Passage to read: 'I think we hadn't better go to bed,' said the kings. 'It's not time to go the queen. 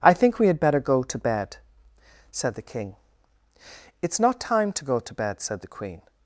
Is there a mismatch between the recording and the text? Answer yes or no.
yes